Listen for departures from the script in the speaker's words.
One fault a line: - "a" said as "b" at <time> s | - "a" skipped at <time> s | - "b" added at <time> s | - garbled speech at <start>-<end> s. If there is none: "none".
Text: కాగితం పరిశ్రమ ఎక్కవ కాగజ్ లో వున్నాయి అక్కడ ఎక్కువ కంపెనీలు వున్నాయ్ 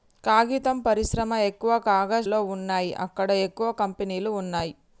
none